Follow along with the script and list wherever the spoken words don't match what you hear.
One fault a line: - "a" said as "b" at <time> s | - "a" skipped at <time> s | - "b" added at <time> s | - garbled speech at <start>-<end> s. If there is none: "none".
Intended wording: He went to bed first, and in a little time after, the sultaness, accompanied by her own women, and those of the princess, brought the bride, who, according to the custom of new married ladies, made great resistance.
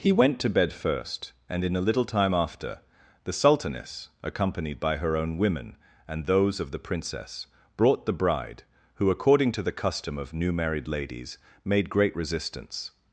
none